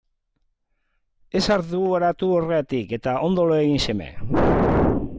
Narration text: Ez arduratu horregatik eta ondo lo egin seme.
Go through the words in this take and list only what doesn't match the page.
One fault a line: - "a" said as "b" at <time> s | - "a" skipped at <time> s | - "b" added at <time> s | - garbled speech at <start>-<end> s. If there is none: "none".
none